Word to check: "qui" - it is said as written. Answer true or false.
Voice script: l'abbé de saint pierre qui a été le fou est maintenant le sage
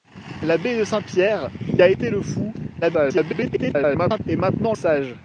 false